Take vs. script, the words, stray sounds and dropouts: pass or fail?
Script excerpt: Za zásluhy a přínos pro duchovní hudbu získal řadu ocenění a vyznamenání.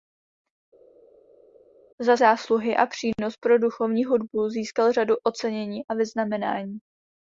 pass